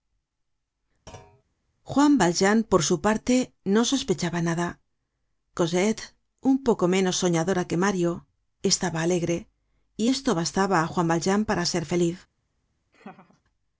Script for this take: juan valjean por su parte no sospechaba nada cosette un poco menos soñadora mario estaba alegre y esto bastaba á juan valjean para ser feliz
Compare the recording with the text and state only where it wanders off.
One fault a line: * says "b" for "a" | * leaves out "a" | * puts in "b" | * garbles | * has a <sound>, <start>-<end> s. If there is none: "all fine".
* has a thud, 1.1-1.4 s
* puts in "que"
* has a laugh, 12.9-13.4 s